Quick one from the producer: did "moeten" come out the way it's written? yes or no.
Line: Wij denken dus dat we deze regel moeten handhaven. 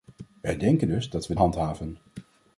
no